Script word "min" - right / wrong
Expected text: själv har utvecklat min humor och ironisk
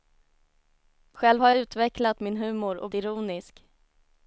right